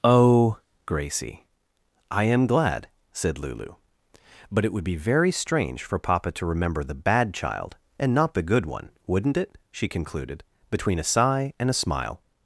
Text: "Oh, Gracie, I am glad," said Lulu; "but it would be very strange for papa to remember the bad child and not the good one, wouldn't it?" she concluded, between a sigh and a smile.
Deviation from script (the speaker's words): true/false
false